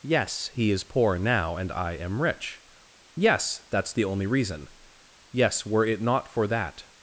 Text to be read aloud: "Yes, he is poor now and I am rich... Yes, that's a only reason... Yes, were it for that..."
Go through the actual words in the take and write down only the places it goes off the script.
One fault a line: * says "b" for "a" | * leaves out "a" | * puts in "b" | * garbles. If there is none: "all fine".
* says "the" for "a"
* puts in "not"